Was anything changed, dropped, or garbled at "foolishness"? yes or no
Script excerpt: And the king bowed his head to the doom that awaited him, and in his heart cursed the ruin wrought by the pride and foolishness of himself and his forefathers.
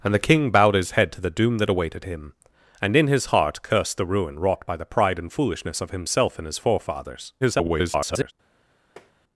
no